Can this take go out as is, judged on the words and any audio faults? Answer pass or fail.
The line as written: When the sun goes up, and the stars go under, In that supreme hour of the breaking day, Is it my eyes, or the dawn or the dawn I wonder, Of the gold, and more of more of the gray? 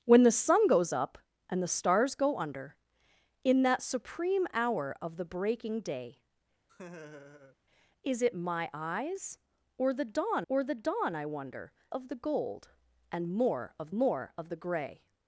fail